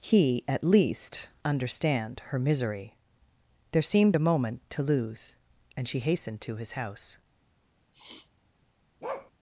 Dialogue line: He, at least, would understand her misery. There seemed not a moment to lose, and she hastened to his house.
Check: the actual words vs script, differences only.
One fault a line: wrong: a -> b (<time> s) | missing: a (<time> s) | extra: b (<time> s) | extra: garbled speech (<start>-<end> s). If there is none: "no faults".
missing: would (1.3 s)
missing: not (4.2 s)